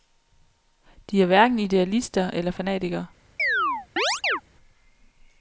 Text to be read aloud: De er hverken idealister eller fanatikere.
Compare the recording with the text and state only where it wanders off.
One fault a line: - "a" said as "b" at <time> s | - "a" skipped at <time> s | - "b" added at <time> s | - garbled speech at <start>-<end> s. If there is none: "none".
none